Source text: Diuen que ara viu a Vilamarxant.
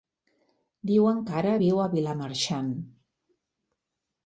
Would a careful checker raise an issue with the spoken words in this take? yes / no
no